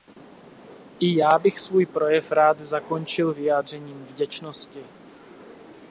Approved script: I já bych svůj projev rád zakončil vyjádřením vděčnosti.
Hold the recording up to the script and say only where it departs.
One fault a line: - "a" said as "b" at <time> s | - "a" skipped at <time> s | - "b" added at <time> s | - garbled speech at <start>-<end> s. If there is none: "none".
none